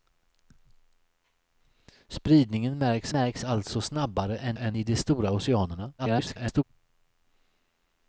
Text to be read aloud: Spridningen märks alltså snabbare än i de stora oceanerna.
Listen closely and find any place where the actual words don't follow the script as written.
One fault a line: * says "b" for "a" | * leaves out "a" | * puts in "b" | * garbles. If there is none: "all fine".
* puts in "märks"
* puts in "än"
* garbles